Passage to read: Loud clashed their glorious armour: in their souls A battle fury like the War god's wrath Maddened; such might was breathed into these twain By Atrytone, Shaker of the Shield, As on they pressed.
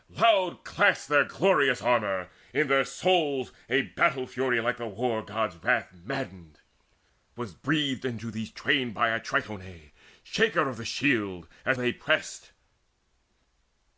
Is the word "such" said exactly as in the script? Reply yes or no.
no